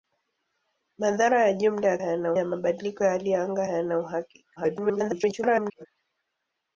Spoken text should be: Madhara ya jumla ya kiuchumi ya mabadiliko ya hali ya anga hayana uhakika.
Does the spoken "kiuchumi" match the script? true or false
false